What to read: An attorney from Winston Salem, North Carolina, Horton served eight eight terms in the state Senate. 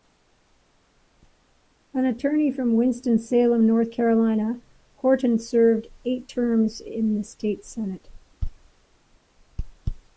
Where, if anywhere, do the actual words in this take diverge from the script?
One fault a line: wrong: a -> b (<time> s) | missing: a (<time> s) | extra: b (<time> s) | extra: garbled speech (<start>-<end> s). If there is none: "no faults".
missing: eight (6.3 s)